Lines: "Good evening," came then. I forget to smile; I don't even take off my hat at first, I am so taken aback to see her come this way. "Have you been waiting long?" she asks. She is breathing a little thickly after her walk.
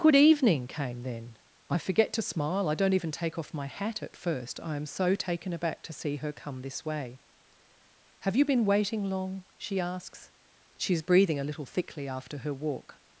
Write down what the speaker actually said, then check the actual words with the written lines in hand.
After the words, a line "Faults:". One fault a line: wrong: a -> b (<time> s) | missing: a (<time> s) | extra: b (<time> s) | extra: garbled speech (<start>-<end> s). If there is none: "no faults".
"Good evening," came then. I forget to smile; I don't even take off my hat at first, I am so taken aback to see her come this way. "Have you been waiting long?" she asks. She is breathing a little thickly after her walk.
Faults:
no faults